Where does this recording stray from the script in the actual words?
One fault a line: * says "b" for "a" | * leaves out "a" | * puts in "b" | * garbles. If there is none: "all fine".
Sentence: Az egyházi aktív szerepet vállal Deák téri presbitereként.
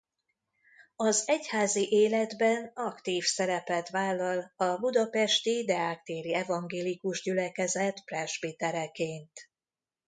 * puts in "életben"
* puts in "a budapesti"
* puts in "evangélikus gyülekezet"